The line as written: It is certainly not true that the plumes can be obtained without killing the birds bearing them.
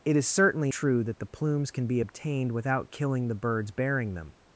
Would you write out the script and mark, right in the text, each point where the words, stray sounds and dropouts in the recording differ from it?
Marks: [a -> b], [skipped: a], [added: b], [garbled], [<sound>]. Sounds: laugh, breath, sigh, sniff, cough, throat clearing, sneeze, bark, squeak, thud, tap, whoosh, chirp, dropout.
It is certainly [skipped: not] true that the plumes can be obtained without killing the birds bearing them.